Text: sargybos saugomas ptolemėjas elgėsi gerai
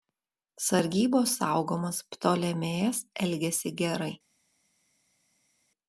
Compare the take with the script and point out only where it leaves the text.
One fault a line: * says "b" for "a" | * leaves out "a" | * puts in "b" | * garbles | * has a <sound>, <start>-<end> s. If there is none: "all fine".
all fine